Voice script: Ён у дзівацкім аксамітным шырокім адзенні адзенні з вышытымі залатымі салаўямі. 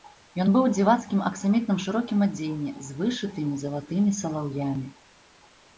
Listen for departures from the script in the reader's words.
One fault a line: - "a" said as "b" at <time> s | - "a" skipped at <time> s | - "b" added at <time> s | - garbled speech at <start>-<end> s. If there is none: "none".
- "быў" added at 0.5 s
- "адзенні" skipped at 2.7 s